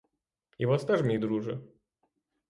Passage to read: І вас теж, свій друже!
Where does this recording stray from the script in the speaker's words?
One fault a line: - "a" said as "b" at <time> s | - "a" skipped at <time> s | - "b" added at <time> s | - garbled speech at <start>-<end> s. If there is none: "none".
- "свій" said as "мій" at 1.0 s